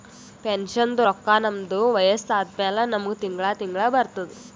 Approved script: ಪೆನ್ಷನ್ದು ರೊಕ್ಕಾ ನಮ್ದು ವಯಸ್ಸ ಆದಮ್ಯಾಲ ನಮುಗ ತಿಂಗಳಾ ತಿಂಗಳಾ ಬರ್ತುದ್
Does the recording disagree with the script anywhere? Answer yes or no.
no